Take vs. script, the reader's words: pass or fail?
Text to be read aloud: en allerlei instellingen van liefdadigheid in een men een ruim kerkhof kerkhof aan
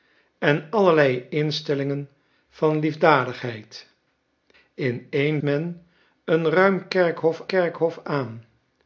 pass